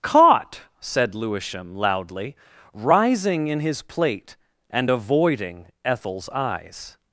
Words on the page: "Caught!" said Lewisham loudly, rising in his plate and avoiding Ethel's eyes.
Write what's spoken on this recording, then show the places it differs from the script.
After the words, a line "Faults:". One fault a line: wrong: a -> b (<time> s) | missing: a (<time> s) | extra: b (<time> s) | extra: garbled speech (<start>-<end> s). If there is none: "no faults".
"Caught!" said Lewisham loudly, rising in his plate and avoiding Ethel's eyes.
Faults:
no faults